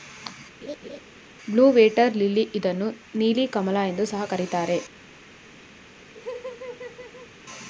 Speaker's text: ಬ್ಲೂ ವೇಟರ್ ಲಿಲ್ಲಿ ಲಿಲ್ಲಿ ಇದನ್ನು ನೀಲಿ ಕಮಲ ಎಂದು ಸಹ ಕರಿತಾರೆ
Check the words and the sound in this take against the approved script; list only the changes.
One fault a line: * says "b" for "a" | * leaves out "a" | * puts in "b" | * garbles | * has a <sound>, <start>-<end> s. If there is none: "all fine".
* has a laugh, 0.6-1.0 s
* leaves out "ಲಿಲ್ಲಿ"
* has a laugh, 6.1-7.3 s